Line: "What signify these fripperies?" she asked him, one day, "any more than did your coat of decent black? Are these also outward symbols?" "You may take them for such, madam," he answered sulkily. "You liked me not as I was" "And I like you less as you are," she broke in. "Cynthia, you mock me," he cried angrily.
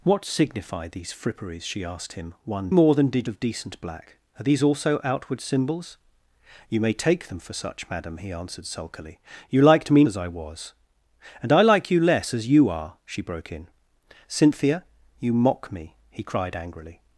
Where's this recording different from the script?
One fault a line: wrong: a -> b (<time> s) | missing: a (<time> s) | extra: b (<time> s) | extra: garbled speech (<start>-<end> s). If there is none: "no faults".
missing: day any (2.7 s)
missing: your coat (3.3 s)
missing: not (10.0 s)